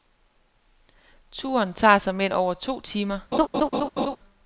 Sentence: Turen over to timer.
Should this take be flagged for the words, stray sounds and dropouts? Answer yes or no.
yes